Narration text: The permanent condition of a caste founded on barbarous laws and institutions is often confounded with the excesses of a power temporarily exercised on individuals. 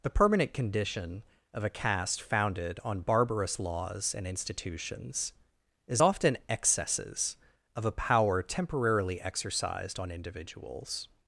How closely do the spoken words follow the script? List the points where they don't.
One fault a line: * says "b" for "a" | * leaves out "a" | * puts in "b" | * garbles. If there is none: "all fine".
* leaves out "confounded with the"